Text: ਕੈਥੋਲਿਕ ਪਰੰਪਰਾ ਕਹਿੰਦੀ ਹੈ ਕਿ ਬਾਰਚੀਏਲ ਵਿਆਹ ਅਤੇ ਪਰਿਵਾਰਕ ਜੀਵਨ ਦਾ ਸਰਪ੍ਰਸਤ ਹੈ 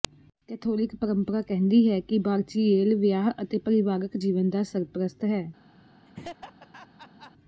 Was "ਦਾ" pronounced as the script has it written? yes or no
yes